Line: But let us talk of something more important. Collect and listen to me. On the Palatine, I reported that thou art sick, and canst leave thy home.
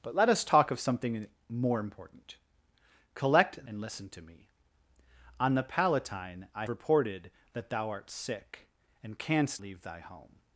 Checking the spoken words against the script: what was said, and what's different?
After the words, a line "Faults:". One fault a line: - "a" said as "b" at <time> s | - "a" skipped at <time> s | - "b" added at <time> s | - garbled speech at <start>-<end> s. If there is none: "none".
But let us talk of something more important. Collect and listen to me. On the Palatine, I reported that thou art sick, and canst leave thy home.
Faults:
none